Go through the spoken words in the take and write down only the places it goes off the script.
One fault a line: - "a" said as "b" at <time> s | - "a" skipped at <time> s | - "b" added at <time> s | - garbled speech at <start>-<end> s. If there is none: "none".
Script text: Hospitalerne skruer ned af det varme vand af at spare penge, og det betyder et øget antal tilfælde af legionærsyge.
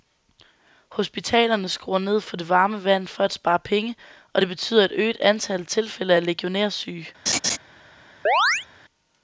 - "af" said as "for" at 2.2 s
- "af" said as "for" at 3.1 s